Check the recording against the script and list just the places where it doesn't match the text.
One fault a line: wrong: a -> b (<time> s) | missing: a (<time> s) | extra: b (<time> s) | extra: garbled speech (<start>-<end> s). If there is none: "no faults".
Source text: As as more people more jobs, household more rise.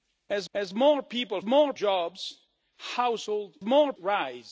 no faults